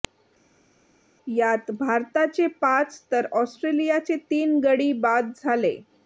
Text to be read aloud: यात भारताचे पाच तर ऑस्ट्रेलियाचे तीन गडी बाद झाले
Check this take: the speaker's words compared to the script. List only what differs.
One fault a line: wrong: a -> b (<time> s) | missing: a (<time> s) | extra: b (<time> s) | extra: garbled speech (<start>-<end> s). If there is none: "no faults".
no faults